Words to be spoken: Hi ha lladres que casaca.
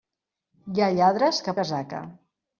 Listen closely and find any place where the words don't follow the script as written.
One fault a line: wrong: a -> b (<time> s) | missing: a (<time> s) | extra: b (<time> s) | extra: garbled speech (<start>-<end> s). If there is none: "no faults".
no faults